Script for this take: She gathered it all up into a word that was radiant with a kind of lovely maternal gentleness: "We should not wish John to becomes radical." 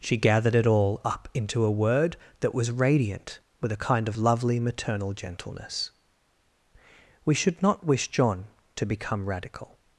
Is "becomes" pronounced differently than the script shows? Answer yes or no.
yes